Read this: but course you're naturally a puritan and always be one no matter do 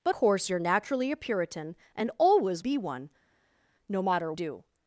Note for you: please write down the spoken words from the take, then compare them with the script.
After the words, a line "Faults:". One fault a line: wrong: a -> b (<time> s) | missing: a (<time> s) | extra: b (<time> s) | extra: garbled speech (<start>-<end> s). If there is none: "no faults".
but course you're naturally a puritan and always be one no matter do
Faults:
no faults